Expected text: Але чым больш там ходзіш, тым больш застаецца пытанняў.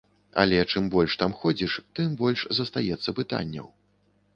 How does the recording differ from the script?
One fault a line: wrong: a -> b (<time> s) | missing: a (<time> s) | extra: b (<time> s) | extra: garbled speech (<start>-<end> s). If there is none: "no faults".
no faults